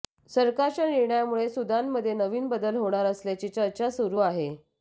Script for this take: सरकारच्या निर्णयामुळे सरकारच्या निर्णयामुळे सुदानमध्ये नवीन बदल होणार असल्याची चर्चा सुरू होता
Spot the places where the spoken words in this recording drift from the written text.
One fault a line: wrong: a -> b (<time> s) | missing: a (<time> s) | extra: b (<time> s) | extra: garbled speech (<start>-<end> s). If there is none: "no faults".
missing: सरकारच्या निर्णयामुळे (1.5 s)
wrong: होता -> आहे (4.2 s)